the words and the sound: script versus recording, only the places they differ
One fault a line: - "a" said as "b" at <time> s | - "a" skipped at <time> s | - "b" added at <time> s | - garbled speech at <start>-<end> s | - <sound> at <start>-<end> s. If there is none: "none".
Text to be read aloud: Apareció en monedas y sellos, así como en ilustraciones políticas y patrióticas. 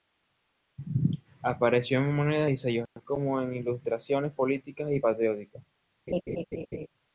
- laugh at 6.1-6.9 s